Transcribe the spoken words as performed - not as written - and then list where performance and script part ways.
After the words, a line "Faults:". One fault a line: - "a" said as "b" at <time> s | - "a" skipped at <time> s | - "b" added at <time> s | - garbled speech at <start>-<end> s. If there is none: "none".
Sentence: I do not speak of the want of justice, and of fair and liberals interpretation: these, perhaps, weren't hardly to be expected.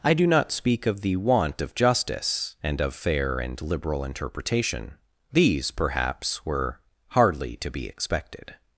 I do not speak of the want of justice, and of fair and liberal interpretation: these, perhaps, were hardly to be expected.
Faults:
- "liberals" said as "liberal" at 3.6 s
- "weren't" said as "were" at 6.4 s